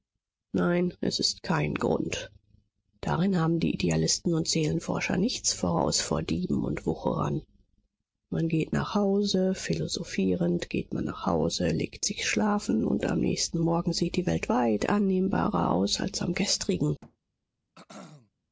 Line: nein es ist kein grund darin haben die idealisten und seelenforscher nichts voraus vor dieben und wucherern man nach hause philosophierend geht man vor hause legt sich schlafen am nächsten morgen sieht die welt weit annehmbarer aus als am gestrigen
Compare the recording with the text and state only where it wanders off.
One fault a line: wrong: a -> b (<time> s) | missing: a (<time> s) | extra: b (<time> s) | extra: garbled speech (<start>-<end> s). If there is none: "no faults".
extra: geht (8.5 s)
wrong: vor -> nach (11.1 s)
extra: und (12.8 s)